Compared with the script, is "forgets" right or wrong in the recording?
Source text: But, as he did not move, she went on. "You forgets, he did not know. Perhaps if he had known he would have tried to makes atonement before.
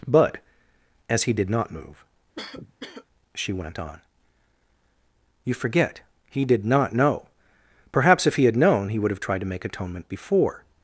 wrong